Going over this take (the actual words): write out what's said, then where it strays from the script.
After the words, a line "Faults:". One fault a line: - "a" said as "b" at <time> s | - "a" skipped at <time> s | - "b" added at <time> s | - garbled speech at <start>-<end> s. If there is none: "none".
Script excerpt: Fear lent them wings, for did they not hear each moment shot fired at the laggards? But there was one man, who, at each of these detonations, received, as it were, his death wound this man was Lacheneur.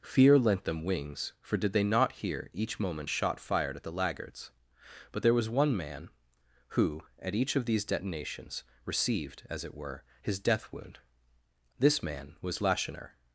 Fear lent them wings, for did they not hear each moment shot fired at the laggards? But there was one man, who, at each of these detonations, received, as it were, his death wound this man was Lacheneur.
Faults:
none